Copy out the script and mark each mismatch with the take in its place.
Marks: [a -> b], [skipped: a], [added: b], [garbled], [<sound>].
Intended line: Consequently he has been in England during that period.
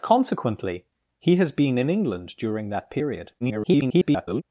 Consequently he has been in England during that period. [garbled]